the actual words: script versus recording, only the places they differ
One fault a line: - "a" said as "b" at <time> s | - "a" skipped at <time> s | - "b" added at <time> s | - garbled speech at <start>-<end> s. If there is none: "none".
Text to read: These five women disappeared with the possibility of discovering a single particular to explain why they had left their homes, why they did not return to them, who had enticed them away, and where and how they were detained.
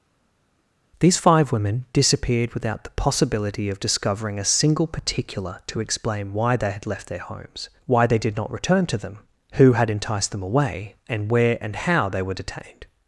- "with" said as "without" at 2.5 s